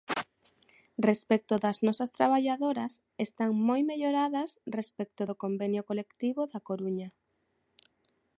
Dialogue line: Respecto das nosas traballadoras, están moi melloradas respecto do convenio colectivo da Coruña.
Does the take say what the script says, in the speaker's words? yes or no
yes